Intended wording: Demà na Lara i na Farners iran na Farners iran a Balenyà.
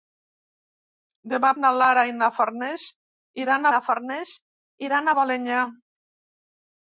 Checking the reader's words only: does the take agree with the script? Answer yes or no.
yes